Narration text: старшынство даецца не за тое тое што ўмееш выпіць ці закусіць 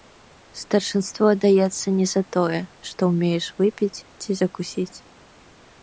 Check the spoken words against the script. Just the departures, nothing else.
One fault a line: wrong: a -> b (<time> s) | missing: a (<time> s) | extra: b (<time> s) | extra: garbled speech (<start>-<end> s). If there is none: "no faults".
missing: тое (2.6 s)